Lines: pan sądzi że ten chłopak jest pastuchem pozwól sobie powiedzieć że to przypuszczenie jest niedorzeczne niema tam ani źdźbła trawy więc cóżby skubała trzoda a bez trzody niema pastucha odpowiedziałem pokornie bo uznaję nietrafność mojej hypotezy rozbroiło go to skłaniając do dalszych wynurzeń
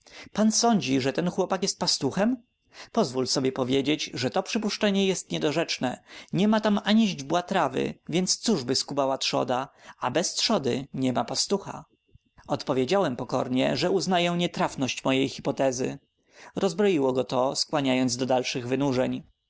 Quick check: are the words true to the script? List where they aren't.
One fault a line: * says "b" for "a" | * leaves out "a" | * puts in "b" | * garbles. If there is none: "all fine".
* says "że" for "bo"